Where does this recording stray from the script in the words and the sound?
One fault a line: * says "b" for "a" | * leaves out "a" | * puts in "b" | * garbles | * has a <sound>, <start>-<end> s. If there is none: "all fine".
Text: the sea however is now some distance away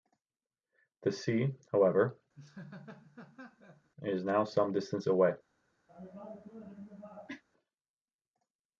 * has a laugh, 2.4-3.9 s
* has a cough, 5.9-7.4 s